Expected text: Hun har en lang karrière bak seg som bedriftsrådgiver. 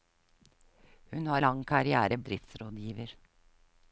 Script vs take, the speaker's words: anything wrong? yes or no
yes